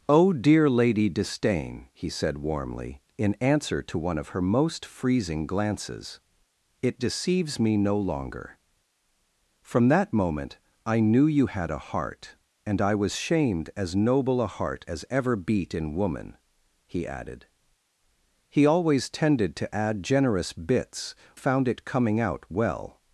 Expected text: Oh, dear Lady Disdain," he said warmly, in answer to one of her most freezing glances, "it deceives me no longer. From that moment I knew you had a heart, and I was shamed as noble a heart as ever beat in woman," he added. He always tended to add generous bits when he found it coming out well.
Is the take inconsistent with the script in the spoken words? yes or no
yes